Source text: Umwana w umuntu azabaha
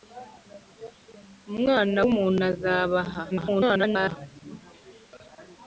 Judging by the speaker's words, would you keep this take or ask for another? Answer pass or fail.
fail